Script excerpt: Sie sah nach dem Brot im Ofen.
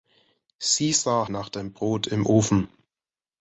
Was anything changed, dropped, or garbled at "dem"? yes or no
no